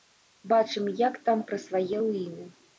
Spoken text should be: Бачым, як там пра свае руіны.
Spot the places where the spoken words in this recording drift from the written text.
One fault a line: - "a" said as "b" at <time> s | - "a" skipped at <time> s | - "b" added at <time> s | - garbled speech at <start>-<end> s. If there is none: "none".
none